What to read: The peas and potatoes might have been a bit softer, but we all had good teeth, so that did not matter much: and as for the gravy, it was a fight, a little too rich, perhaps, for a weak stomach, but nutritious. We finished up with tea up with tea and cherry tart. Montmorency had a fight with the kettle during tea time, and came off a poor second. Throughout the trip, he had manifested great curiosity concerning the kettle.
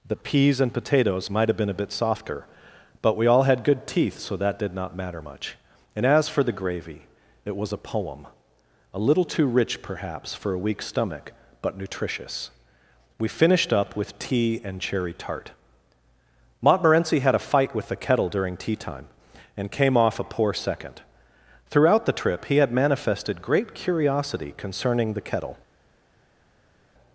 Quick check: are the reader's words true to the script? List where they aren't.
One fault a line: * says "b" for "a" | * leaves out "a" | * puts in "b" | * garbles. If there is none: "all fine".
* says "poem" for "fight"
* leaves out "up with tea"